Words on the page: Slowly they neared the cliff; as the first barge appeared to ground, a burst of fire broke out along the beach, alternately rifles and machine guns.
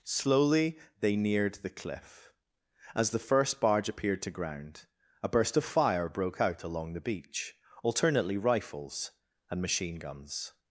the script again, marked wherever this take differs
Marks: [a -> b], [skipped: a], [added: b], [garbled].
Slowly they neared the cliff; as the first barge appeared to ground, a burst of fire broke out along the beach, alternately rifles and machine guns.